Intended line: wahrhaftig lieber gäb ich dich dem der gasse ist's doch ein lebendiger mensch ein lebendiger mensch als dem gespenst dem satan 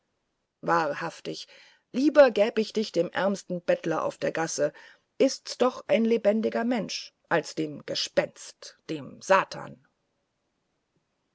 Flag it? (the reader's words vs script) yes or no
yes